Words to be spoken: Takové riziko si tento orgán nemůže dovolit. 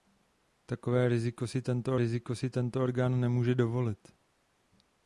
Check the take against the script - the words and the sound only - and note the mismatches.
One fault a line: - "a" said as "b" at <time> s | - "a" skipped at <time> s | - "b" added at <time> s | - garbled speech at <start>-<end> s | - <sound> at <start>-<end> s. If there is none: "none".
- "riziko si tento" added at 2.0 s